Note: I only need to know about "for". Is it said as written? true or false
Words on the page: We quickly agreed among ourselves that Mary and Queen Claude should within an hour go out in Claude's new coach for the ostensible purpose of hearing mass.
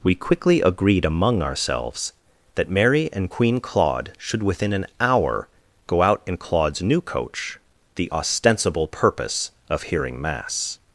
false